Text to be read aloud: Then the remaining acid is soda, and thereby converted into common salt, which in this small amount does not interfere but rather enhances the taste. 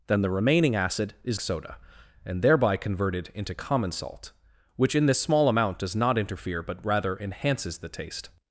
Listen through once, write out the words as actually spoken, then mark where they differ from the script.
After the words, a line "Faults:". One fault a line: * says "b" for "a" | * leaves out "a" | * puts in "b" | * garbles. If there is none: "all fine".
Then the remaining acid is soda, and thereby converted into common salt, which in this small amount does not interfere but rather enhances the taste.
Faults:
all fine